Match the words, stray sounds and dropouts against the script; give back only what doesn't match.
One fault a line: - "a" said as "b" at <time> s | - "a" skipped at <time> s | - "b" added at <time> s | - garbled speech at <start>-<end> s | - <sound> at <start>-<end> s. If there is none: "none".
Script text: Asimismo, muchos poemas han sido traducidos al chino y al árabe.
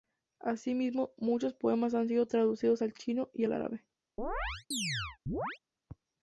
- chirp at 4.2-5.6 s